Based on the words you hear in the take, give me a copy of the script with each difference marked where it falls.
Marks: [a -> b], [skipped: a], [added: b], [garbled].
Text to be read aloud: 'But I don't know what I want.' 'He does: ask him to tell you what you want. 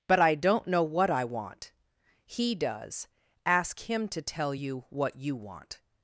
'But I don't know what I want.' 'He does: ask him to tell you what you want.